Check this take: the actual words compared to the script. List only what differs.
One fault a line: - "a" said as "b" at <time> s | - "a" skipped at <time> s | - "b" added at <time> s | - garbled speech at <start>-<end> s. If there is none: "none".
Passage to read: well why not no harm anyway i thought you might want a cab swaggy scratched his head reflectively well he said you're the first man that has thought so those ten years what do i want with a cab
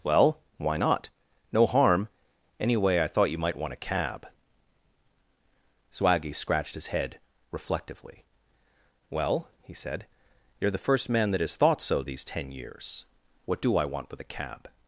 - "those" said as "these" at 12.0 s